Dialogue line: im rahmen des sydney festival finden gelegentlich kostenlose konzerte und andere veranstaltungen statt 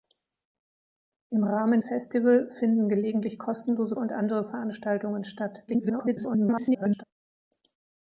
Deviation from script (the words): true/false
true